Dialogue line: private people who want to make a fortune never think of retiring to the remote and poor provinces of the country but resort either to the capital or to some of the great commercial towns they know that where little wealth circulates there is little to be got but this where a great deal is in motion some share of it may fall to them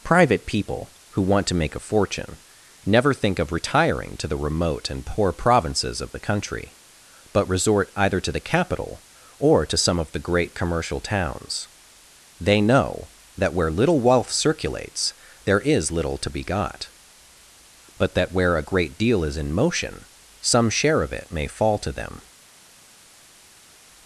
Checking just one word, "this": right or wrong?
wrong